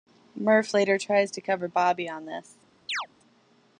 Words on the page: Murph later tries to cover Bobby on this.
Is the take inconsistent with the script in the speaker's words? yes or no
no